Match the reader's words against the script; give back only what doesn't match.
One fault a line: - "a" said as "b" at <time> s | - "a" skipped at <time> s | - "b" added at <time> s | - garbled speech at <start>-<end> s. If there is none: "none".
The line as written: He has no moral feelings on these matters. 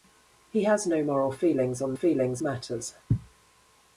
- "these" said as "feelings" at 1.9 s